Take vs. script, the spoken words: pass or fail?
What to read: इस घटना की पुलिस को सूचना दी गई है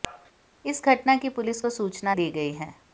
pass